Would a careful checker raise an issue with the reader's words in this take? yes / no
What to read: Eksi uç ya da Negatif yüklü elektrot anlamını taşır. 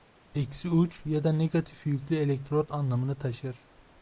no